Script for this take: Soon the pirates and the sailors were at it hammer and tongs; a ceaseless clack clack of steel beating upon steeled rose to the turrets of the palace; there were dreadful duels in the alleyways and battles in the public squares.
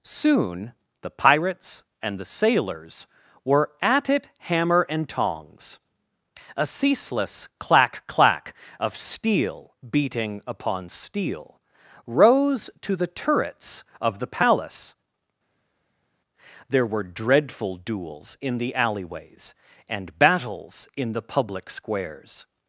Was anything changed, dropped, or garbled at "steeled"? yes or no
yes